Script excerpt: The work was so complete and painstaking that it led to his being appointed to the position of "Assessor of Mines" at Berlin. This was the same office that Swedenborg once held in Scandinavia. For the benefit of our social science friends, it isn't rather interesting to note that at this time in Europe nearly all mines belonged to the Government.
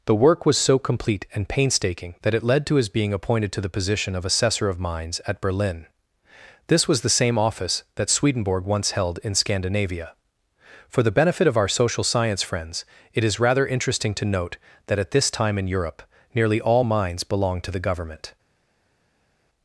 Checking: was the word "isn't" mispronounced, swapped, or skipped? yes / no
yes